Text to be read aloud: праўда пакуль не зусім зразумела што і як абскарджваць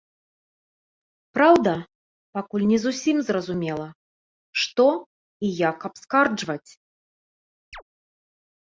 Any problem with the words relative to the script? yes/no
no